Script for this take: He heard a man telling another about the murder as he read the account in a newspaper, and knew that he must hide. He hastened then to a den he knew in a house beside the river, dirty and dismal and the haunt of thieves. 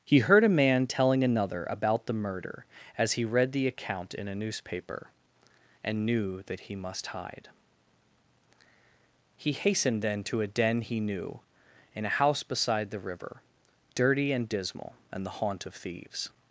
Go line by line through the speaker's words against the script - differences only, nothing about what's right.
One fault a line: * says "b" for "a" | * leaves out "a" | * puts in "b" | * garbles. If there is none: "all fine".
all fine